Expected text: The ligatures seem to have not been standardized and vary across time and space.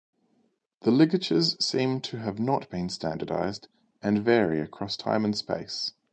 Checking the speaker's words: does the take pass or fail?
pass